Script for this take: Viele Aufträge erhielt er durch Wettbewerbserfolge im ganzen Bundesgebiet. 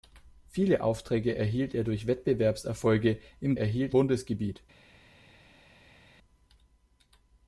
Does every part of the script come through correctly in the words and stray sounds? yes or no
no